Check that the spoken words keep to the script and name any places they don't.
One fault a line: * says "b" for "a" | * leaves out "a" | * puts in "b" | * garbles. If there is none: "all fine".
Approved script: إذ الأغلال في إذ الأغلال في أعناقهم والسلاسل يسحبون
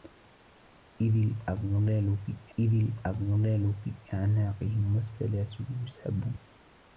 all fine